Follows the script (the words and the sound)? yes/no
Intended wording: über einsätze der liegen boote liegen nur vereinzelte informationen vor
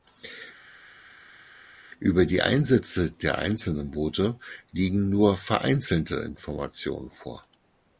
no